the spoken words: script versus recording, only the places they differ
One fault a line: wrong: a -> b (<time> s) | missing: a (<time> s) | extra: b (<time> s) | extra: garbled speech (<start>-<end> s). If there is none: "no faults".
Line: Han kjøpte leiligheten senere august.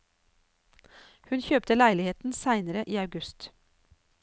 wrong: Han -> Hun (1.3 s)
extra: i (2.9 s)